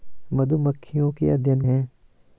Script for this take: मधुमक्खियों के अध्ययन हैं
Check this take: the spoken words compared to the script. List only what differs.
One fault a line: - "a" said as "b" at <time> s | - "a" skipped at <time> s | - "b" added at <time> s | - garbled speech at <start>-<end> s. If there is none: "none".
none